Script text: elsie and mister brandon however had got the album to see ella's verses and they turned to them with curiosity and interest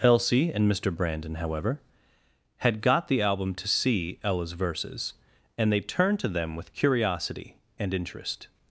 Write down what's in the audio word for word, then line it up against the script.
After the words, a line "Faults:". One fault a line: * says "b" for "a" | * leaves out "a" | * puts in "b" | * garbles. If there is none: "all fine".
elsie and mister brandon however had got the album to see ella's verses and they turned to them with curiosity and interest
Faults:
all fine